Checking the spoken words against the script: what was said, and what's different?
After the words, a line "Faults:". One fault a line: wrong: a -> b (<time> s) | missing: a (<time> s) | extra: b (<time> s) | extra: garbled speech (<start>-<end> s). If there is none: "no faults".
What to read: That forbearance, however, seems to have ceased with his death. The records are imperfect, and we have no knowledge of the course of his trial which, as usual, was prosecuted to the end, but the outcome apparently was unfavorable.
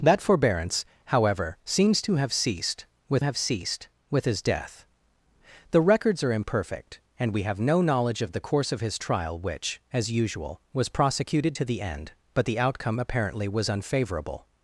That forbearance, however, seems to have ceased with have ceased with his death. The records are imperfect, and we have no knowledge of the course of his trial which, as usual, was prosecuted to the end, but the outcome apparently was unfavorable.
Faults:
extra: have ceased with (3.2 s)